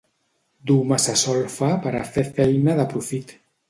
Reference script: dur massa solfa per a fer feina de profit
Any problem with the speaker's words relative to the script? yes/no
no